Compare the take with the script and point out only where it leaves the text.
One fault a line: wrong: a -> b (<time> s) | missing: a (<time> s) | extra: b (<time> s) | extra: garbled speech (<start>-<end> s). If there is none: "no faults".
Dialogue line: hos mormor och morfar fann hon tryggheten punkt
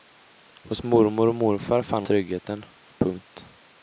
missing: hon (2.0 s)